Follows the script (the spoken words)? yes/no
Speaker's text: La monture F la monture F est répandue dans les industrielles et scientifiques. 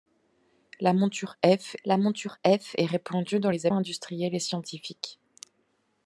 yes